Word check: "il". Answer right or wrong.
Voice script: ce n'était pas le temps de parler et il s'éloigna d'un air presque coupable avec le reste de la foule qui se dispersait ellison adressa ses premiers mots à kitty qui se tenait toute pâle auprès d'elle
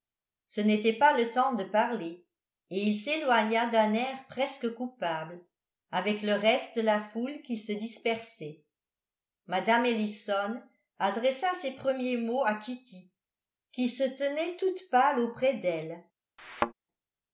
right